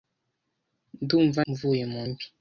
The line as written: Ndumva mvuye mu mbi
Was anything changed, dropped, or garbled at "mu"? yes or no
no